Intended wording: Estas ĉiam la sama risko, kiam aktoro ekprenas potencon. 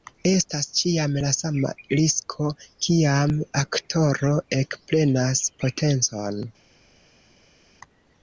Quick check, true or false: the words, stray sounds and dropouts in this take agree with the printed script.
true